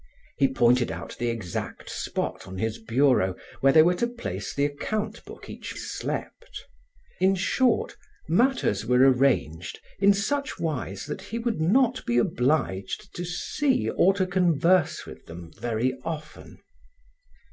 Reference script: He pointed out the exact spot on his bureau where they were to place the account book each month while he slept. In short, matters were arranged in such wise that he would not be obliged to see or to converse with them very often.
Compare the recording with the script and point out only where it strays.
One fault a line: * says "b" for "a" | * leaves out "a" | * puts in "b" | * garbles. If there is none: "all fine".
* leaves out "month while he"